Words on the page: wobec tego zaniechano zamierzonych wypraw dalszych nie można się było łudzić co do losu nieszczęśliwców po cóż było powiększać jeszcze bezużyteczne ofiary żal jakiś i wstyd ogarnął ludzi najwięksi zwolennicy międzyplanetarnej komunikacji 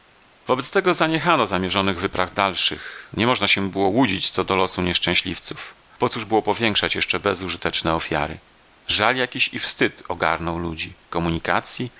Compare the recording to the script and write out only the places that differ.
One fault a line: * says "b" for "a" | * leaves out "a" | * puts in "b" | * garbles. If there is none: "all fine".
* leaves out "najwięksi zwolennicy międzyplanetarnej"